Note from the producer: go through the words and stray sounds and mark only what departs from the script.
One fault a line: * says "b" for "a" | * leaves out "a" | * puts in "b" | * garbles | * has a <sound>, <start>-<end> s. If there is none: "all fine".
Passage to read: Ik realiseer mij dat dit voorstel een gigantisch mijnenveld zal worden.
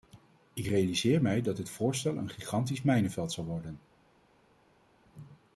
all fine